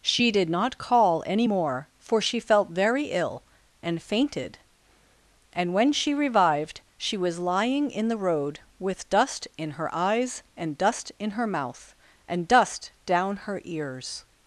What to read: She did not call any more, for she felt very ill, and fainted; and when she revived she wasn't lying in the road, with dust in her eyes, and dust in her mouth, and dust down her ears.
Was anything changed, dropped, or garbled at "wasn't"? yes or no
yes